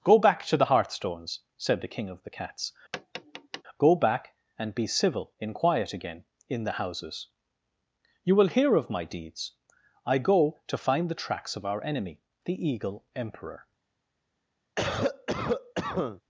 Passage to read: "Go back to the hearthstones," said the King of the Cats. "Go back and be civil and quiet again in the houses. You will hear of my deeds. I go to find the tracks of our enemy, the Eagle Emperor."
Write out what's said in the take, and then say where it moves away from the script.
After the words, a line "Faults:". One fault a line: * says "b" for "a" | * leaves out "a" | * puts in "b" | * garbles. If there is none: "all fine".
"Go back to the hearthstones," said the King of the Cats. "Go back and be civil in quiet again in the houses. You will hear of my deeds. I go to find the tracks of our enemy, the Eagle Emperor."
Faults:
* says "in" for "and"